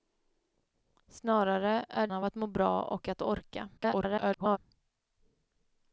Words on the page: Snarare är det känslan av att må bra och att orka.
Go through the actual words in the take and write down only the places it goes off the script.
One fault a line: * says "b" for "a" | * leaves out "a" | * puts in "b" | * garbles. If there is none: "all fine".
* leaves out "det känslan"
* garbles